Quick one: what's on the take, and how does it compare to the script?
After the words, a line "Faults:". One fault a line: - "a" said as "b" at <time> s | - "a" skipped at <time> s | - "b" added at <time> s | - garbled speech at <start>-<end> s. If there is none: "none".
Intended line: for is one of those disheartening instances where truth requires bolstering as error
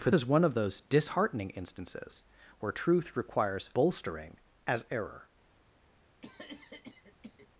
for is one of those disheartening instances where truth requires bolstering as error
Faults:
none